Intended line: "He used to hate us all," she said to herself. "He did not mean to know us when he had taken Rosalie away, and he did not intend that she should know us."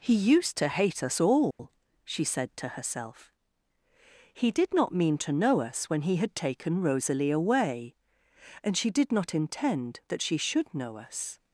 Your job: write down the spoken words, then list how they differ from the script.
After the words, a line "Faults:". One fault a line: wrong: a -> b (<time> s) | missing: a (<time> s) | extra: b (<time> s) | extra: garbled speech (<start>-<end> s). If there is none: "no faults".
"He used to hate us all," she said to herself. "He did not mean to know us when he had taken Rosalie away, and she did not intend that she should know us."
Faults:
wrong: he -> she (8.8 s)